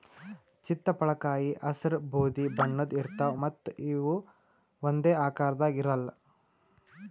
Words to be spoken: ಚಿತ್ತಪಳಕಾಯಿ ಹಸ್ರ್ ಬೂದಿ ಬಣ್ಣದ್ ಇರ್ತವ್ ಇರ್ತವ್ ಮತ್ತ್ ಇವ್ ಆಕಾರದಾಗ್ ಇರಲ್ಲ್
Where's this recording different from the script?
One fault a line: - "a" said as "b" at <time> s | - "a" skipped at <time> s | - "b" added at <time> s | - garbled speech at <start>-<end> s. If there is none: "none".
- "ಇರ್ತವ್" skipped at 3.4 s
- "ಒಂದೇ" added at 4.8 s